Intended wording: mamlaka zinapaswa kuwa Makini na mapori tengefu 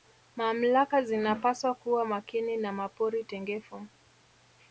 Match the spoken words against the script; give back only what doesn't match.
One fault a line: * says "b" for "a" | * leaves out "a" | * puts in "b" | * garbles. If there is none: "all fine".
all fine